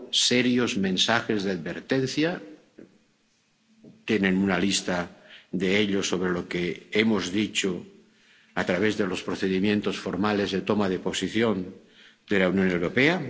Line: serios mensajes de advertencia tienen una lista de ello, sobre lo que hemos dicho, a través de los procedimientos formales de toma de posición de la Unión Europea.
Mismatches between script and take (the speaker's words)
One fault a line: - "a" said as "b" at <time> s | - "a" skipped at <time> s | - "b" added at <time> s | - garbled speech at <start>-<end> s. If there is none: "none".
none